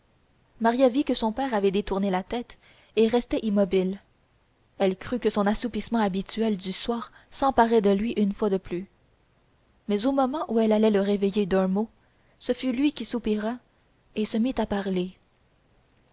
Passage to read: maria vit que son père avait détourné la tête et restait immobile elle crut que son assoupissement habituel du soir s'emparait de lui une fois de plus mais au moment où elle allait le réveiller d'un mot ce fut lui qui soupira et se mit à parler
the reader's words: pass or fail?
pass